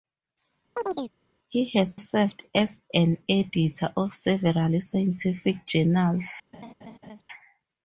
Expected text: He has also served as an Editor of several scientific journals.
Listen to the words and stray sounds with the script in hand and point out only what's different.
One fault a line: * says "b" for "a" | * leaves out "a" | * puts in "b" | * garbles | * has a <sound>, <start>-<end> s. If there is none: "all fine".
* has a chirp, 0.8-1.1 s
* leaves out "also"
* has a laugh, 6.5-7.2 s